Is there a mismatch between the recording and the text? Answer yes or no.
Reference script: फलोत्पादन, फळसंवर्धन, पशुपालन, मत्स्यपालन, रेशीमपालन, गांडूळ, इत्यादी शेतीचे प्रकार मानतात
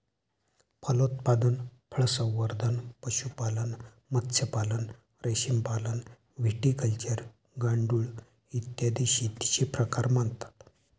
yes